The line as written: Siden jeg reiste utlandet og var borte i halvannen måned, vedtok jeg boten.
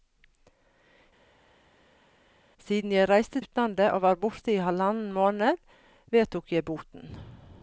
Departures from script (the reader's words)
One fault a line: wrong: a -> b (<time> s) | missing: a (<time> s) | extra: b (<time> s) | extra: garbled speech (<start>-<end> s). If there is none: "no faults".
no faults